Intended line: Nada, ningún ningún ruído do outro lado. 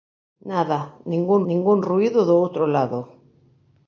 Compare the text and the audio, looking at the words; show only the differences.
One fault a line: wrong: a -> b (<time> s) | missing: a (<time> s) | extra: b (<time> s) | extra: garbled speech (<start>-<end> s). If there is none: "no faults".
no faults